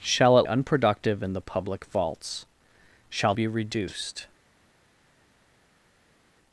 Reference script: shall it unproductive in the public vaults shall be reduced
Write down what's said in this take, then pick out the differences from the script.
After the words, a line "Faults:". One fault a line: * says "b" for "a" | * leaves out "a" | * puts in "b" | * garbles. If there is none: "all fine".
shall it unproductive in the public vaults shall be reduced
Faults:
all fine